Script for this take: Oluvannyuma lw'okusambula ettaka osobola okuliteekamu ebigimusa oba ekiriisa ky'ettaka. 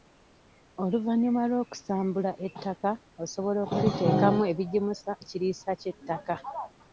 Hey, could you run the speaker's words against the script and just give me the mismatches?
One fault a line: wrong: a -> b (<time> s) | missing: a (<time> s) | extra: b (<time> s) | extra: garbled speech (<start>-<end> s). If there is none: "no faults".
missing: oba (5.1 s)